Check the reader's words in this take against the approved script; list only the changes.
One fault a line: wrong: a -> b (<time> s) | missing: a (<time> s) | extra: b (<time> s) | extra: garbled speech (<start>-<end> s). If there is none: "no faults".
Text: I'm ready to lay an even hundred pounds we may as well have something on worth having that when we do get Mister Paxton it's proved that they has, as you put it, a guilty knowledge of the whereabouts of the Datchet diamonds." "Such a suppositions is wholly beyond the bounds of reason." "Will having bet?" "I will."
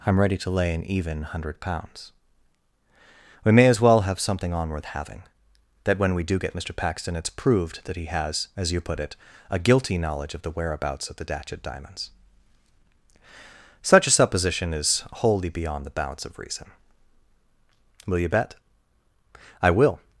wrong: they -> he (8.0 s)
wrong: suppositions -> supposition (14.1 s)
wrong: having -> you (18.2 s)